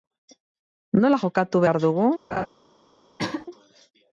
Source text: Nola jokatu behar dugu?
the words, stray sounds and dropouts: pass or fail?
fail